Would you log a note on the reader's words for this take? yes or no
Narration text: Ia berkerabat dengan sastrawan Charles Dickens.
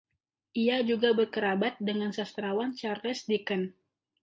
yes